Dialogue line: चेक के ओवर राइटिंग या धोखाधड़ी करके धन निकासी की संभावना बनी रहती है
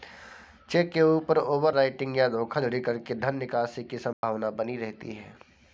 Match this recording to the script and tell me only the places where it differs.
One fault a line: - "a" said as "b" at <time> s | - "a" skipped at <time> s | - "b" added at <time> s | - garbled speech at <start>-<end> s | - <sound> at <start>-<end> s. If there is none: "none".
- "ऊपर" added at 1.0 s
- dropout at 4.1-4.2 s